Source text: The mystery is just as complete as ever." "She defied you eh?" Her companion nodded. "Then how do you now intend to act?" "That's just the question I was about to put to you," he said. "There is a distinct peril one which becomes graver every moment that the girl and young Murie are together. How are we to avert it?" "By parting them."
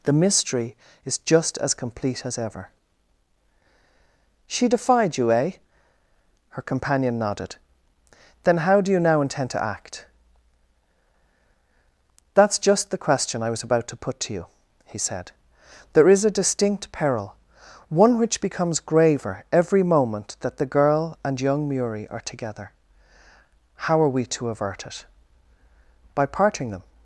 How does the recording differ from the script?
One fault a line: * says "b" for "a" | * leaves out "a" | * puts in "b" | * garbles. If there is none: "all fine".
all fine